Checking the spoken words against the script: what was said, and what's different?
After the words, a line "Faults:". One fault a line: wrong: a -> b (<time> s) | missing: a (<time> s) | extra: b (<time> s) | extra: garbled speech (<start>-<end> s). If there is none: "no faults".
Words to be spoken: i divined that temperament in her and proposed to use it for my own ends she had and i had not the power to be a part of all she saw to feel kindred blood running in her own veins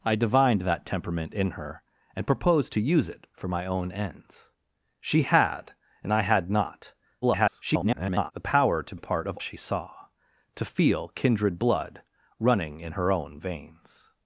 i divined that temperament in her and proposed to use it for my own ends she had and i had not [garbled] the power to a part of she saw to feel kindred blood running in her own veins
Faults:
extra: garbled speech (7.2-8.3 s)
missing: be (8.9 s)
missing: all (9.4 s)